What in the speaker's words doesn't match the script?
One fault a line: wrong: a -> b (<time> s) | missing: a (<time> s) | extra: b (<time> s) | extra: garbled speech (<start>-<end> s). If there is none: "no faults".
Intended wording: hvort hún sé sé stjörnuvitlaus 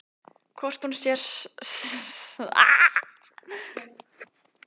missing: sé (1.1 s)